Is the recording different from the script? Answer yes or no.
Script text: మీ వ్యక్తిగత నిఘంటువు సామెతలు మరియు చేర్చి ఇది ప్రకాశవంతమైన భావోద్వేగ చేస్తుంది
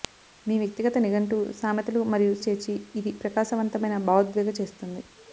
no